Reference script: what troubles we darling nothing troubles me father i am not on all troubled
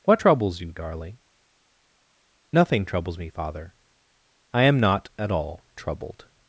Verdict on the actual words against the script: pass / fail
fail